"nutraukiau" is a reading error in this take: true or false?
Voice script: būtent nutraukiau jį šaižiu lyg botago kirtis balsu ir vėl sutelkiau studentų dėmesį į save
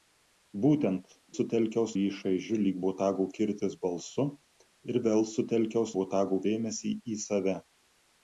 true